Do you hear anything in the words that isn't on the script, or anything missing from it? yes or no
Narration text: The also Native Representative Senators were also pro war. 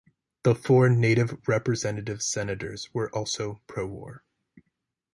yes